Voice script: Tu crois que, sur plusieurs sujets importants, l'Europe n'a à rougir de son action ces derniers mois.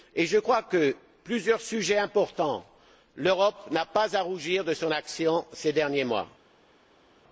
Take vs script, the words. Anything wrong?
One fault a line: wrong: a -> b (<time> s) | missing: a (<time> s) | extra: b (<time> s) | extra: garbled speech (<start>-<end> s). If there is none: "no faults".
wrong: Tu -> Je (0.1 s)
extra: pas (3.8 s)